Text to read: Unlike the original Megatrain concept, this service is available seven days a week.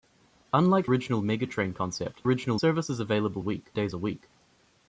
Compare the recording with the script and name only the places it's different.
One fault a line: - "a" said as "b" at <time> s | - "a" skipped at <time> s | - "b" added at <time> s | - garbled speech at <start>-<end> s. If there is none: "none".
- "the" skipped at 0.9 s
- "this" said as "original" at 2.2 s
- "seven" said as "week" at 3.4 s